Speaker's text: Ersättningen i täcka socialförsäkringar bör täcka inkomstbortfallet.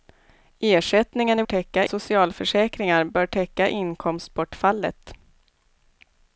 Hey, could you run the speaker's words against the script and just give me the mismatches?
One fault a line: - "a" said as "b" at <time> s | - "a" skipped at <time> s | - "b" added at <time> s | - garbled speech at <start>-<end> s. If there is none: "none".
none